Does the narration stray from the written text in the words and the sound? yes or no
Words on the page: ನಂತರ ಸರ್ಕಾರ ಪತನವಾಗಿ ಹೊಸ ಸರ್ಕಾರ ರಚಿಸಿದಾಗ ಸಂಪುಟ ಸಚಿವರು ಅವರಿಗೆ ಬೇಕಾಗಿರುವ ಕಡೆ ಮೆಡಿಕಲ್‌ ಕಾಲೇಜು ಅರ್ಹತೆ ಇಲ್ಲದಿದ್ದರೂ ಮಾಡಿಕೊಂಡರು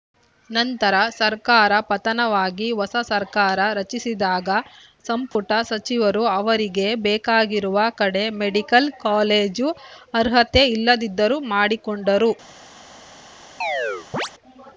yes